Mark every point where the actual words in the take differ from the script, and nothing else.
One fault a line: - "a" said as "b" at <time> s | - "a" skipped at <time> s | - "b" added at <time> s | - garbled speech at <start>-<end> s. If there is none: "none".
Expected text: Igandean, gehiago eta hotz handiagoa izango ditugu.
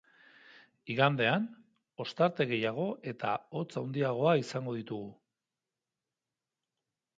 - "ostarte" added at 2.0 s